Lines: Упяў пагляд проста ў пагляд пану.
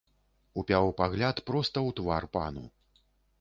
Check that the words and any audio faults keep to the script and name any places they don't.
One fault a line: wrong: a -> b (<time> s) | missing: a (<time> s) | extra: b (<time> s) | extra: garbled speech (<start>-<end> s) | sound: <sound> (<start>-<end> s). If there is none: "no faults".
wrong: пагляд -> твар (2.0 s)